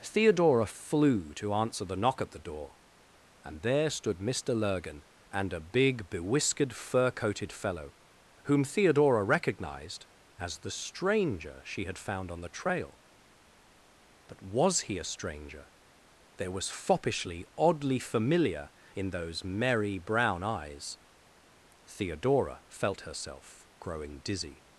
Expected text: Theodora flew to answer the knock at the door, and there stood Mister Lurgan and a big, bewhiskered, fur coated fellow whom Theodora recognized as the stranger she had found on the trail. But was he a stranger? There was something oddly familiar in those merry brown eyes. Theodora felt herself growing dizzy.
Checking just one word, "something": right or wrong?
wrong